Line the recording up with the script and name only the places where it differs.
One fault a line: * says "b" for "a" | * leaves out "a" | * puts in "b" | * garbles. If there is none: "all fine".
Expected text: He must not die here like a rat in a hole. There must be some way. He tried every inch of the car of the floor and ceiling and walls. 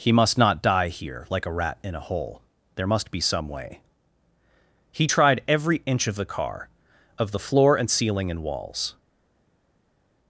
all fine